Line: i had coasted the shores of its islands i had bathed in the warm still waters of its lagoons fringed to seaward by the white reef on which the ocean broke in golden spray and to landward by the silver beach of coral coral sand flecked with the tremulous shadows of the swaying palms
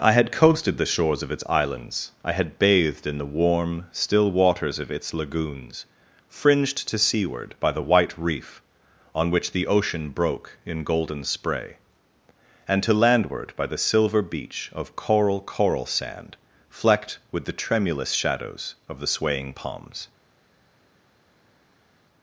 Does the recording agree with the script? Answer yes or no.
yes